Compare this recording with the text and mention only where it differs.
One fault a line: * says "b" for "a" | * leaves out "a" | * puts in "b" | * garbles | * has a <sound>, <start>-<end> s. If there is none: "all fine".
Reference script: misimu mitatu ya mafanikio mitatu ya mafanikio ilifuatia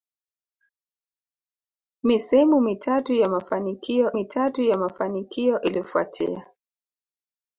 all fine